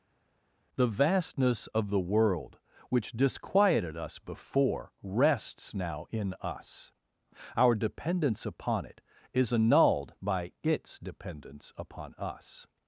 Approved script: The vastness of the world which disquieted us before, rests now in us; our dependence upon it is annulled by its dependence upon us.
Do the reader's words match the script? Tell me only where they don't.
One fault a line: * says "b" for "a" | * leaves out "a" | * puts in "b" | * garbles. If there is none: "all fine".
all fine